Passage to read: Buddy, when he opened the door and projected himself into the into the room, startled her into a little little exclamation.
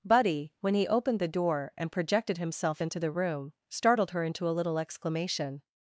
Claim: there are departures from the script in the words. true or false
true